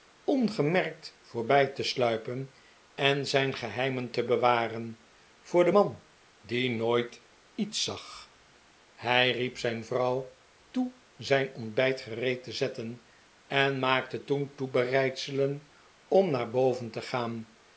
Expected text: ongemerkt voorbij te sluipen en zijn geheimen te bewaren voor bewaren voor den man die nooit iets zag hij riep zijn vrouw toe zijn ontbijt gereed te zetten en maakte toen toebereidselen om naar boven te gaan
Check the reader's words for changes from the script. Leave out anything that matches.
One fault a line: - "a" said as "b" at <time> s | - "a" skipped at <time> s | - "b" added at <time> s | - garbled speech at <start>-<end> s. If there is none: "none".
- "bewaren voor" skipped at 5.6 s